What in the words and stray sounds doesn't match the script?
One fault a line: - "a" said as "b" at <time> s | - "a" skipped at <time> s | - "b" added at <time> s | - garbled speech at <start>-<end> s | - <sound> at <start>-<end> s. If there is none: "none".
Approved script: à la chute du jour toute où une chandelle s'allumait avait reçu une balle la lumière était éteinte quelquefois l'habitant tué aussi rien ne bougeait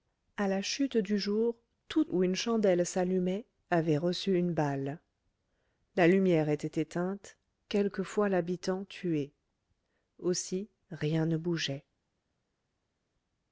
none